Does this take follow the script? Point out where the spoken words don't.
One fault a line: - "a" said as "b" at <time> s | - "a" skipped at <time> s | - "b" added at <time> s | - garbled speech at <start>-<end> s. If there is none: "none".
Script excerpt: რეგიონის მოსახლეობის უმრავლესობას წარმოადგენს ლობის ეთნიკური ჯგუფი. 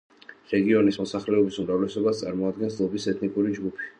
none